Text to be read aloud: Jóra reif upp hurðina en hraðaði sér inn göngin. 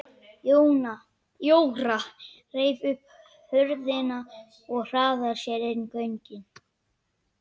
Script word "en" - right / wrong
wrong